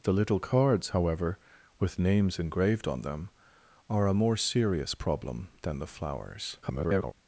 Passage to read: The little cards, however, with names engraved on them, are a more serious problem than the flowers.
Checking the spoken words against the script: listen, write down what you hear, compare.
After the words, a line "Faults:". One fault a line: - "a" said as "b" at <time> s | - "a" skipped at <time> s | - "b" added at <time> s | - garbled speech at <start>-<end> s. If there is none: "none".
The little cards, however, with names engraved on them, are a more serious problem than the flowers. [garbled]
Faults:
- garbled speech at 6.6-7.1 s